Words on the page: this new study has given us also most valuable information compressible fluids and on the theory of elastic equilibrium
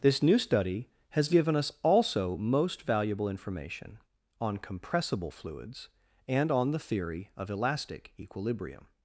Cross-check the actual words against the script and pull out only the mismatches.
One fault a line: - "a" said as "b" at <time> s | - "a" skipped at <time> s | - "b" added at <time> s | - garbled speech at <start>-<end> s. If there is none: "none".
- "on" added at 4.4 s